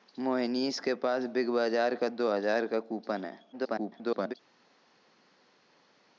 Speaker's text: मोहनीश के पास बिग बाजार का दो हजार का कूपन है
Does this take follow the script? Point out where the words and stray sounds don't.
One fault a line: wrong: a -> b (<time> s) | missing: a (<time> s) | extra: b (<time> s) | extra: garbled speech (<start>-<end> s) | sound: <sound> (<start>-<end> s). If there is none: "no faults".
extra: garbled speech (3.5-4.3 s)